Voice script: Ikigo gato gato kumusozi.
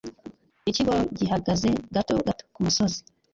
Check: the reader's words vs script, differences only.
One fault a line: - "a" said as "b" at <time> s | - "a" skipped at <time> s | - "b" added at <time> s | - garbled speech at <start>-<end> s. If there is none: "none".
- "gihagaze" added at 1.2 s